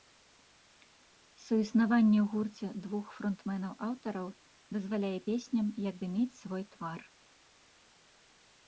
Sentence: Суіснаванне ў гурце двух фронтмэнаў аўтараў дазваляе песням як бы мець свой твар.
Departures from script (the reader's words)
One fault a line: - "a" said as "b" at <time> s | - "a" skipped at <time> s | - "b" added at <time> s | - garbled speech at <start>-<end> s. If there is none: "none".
none